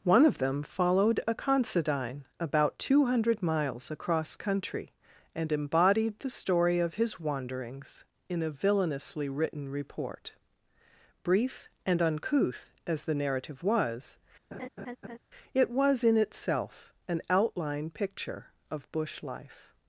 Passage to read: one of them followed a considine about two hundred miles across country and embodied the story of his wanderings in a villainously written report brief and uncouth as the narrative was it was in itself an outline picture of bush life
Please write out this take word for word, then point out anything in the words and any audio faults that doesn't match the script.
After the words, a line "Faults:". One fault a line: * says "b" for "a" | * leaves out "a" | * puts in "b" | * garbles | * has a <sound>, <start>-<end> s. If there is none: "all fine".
one of them followed a considine about two hundred miles across country and embodied the story of his wanderings in a villainously written report brief and uncouth as the narrative was it was in itself an outline picture of bush life
Faults:
* has a laugh, 14.5-15.2 s